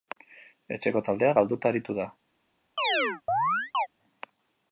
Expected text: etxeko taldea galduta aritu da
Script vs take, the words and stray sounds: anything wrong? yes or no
yes